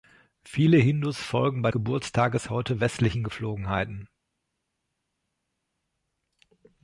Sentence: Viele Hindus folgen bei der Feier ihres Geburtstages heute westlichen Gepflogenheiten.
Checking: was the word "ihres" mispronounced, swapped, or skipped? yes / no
yes